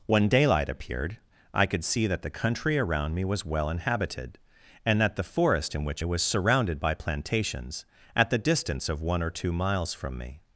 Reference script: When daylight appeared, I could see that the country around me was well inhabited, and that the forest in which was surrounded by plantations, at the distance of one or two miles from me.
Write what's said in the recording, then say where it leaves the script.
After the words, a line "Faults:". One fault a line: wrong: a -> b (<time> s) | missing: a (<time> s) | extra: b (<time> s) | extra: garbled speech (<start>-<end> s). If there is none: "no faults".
When daylight appeared, I could see that the country around me was well inhabited, and that the forest in which was surrounded by plantations, at the distance of one or two miles from me.
Faults:
no faults